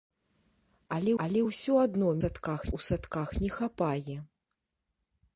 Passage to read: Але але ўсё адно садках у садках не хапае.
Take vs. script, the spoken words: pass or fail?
pass